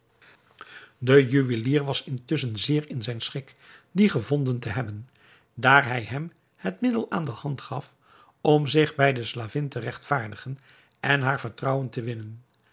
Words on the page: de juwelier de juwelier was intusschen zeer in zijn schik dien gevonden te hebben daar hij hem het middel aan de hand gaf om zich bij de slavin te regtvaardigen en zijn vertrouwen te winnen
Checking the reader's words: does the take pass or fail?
fail